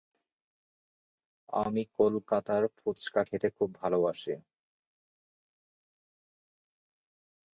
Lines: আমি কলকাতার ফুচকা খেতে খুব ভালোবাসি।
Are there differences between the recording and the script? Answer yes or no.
no